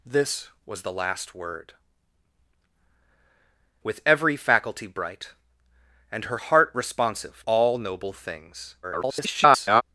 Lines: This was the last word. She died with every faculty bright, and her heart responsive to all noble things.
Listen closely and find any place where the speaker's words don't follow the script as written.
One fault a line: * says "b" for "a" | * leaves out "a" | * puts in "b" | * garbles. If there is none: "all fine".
* leaves out "She died"
* leaves out "to"
* garbles